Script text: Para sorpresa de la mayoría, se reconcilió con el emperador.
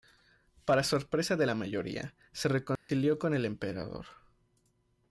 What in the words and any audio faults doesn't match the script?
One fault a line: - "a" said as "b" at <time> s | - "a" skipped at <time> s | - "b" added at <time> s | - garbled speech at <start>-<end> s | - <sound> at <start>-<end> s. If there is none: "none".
- dropout at 2.8-2.9 s